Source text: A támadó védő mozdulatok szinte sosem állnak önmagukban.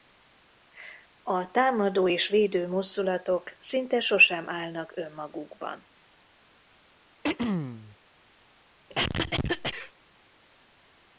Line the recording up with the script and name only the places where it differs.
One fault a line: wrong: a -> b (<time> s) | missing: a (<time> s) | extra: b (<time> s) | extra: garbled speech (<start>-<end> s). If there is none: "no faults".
extra: és (2.1 s)